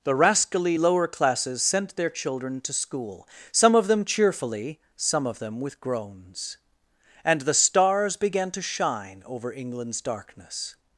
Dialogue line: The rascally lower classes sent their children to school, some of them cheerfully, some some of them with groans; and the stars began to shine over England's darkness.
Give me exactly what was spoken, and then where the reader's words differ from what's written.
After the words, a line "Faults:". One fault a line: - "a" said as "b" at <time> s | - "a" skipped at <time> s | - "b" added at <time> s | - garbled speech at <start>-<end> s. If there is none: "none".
The rascally lower classes sent their children to school, some of them cheerfully, some of them with groans; and the stars began to shine over England's darkness.
Faults:
- "some" skipped at 5.3 s